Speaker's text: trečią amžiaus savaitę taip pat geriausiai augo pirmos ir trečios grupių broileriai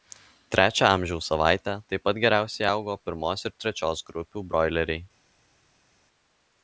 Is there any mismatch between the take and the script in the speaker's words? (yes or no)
no